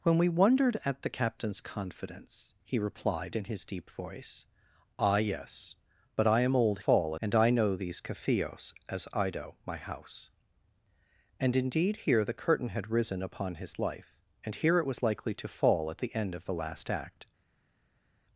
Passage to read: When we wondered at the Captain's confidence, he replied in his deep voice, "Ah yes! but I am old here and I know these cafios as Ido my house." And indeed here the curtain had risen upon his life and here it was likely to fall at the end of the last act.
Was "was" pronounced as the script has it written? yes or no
yes